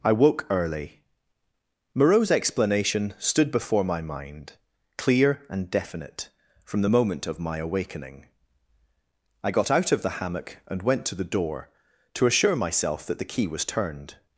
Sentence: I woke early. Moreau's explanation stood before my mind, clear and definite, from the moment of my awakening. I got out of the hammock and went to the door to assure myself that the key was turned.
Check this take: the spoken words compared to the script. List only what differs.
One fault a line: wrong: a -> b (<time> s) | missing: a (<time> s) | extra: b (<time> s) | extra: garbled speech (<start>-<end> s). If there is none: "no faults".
no faults